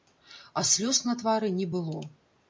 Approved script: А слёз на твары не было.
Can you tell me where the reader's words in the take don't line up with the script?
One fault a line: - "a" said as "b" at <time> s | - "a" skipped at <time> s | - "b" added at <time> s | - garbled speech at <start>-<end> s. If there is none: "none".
none